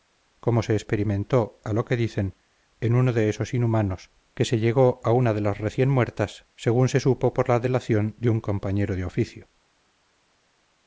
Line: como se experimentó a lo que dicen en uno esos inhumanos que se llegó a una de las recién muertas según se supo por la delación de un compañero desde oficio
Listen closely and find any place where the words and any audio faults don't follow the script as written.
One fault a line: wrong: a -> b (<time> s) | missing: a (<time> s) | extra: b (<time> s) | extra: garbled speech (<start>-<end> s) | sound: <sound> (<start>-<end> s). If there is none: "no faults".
extra: de (3.1 s)
wrong: desde -> de (8.9 s)